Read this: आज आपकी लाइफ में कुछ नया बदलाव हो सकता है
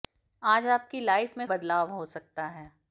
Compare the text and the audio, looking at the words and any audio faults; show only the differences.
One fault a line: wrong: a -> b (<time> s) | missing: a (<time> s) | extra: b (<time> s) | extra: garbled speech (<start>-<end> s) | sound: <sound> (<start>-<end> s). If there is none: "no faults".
missing: कुछ नया (1.5 s)